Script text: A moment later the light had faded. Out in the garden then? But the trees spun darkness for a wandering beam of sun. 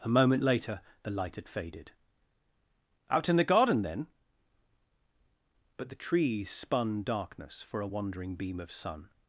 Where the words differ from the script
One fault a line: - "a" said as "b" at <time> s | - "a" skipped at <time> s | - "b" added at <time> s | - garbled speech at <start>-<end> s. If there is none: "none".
none